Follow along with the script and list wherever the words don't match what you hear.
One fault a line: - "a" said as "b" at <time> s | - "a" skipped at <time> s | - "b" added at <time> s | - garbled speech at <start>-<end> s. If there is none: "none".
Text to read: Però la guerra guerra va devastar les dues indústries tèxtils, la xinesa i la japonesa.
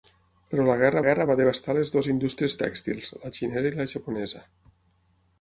none